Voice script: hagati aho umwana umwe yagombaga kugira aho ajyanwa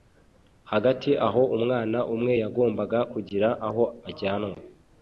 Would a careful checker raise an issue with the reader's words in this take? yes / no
no